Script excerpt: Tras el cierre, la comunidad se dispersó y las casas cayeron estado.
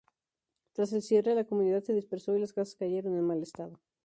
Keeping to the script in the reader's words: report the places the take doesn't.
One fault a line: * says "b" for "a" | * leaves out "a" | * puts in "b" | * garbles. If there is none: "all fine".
* puts in "en mal"